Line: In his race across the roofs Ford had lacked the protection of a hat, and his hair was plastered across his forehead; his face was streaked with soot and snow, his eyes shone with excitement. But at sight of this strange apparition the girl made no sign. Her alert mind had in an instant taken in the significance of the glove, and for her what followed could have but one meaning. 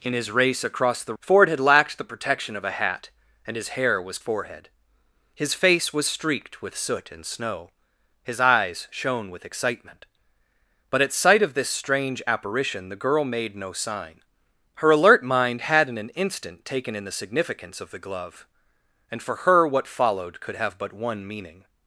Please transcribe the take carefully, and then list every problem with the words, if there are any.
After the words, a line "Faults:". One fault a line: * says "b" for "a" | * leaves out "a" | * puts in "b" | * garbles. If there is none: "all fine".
In his race across the Ford had lacked the protection of a hat, and his hair was forehead; his face was streaked with soot and snow, his eyes shone with excitement. But at sight of this strange apparition the girl made no sign. Her alert mind had in an instant taken in the significance of the glove, and for her what followed could have but one meaning.
Faults:
* leaves out "roofs"
* leaves out "plastered across his"